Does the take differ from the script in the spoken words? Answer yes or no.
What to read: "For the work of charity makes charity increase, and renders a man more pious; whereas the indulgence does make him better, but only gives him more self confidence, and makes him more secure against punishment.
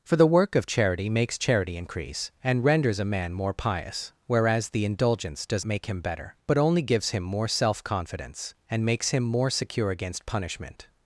no